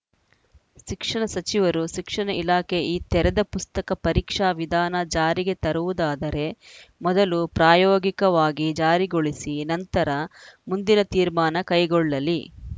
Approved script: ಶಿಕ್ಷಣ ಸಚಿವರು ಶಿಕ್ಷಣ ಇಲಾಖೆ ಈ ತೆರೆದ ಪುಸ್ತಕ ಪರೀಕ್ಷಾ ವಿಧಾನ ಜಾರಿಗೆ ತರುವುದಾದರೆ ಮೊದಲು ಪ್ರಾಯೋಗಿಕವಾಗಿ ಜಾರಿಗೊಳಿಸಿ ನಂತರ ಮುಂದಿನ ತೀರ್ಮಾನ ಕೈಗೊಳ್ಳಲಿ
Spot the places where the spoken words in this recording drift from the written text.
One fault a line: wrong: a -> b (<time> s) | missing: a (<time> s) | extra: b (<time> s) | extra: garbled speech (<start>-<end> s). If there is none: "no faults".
no faults